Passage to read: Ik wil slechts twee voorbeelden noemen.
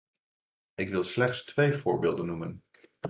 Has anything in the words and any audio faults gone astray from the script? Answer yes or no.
no